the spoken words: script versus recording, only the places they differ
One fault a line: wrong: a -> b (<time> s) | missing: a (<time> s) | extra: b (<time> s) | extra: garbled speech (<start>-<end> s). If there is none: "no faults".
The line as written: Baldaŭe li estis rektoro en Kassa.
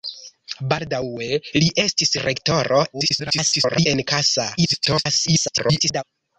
extra: garbled speech (2.9-3.9 s)
extra: garbled speech (4.6-6.0 s)